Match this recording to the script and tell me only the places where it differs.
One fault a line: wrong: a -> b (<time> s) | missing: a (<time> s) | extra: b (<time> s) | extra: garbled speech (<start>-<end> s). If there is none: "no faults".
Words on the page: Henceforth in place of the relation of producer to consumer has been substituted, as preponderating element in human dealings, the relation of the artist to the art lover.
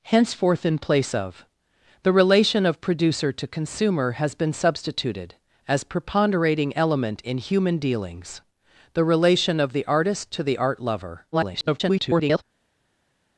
extra: garbled speech (11.3-12.4 s)